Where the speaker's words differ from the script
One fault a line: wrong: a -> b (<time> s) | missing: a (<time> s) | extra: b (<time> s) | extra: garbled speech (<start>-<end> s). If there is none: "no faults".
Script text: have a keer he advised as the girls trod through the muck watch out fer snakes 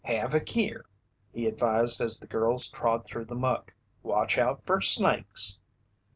no faults